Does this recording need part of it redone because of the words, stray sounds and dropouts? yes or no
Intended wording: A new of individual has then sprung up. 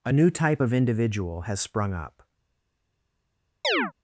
yes